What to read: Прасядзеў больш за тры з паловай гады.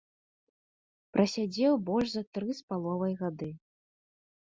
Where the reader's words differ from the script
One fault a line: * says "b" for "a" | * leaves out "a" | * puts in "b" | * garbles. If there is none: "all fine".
all fine